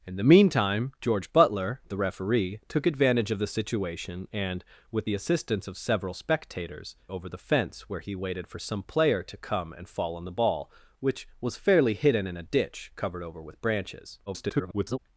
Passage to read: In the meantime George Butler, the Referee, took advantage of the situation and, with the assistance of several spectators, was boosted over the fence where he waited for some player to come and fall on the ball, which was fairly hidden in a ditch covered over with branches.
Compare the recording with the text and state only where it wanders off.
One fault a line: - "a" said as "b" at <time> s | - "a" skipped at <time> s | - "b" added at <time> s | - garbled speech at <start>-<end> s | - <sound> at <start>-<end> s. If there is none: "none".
- "was boosted" skipped at 6.9 s
- garbled speech at 14.3-15.0 s